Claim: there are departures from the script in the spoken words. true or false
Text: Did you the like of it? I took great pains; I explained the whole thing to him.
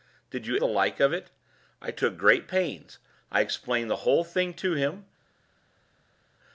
false